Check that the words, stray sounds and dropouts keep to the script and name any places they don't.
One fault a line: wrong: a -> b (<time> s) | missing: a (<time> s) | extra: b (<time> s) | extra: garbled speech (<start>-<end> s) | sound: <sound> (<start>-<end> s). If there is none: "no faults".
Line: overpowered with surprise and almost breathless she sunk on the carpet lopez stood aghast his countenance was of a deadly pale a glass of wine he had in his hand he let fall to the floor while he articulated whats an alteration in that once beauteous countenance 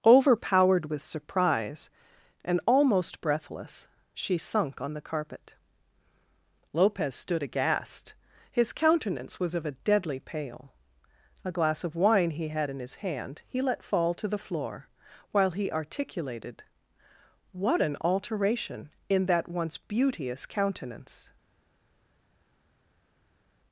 wrong: whats -> what (17.5 s)